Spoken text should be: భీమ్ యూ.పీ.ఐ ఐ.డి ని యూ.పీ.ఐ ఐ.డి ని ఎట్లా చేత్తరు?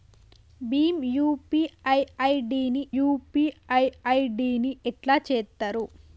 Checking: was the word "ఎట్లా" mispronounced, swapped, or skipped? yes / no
no